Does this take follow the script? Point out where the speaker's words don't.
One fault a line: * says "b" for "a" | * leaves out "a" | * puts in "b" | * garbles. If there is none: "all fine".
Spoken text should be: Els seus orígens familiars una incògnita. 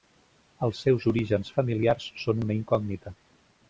* puts in "són"